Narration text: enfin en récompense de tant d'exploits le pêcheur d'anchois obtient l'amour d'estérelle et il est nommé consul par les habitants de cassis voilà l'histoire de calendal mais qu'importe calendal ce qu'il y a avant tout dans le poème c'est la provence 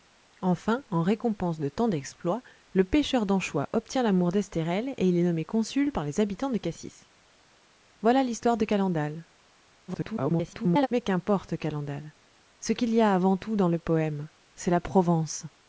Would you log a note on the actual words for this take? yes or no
yes